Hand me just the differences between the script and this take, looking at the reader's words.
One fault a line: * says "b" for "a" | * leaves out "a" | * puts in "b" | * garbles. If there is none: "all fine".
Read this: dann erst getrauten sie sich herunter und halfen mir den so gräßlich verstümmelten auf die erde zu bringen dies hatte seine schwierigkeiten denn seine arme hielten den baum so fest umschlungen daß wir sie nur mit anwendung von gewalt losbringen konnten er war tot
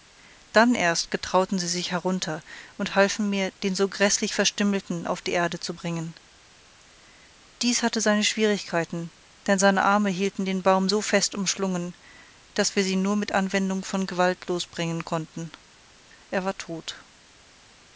all fine